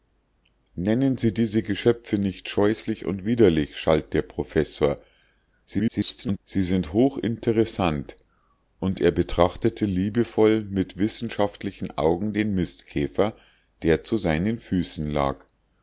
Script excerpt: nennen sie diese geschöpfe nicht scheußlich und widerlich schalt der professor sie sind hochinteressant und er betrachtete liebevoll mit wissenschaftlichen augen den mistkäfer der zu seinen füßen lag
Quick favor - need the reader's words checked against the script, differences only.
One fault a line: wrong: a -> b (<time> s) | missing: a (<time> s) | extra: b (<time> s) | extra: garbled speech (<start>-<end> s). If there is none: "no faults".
extra: garbled speech (5.6-6.4 s)